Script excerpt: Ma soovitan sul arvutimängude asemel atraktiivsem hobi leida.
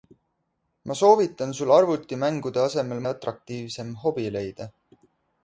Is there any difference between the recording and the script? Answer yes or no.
no